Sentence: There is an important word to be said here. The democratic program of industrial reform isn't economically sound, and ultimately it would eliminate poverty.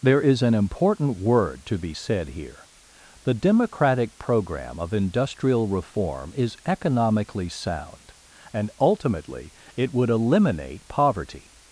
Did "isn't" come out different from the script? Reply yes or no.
yes